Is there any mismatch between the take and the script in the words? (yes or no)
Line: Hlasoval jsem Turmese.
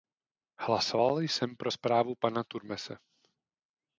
yes